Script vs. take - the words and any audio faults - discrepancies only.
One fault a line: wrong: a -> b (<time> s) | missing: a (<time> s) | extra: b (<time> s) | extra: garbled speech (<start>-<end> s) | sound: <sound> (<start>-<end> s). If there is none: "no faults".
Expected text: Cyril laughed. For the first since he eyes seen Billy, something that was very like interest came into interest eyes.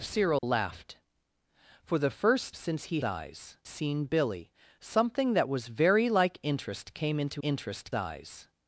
sound: dropout (0.4-0.4 s)